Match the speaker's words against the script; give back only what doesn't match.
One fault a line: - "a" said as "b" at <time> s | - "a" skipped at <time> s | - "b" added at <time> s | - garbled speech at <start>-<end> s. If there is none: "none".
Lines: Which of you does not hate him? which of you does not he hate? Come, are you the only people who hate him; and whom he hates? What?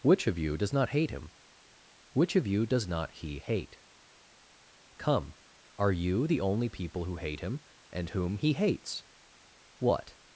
none